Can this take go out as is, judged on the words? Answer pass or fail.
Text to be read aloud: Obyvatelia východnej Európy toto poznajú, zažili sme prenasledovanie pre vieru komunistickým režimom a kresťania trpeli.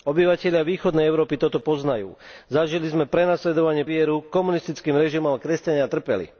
fail